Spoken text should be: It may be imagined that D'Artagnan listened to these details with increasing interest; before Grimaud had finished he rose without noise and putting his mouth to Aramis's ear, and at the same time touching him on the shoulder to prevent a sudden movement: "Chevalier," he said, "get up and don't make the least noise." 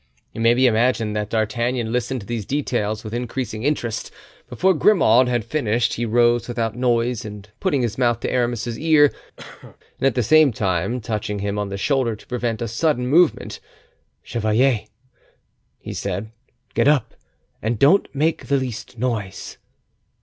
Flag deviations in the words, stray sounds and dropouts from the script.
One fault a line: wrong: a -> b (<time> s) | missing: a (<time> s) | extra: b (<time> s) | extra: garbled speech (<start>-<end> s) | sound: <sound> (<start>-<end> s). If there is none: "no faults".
sound: cough (9.4-9.8 s)